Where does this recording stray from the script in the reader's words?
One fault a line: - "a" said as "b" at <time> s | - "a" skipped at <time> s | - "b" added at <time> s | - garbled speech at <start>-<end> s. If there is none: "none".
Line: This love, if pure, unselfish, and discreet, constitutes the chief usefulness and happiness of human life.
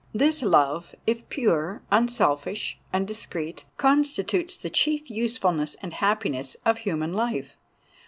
none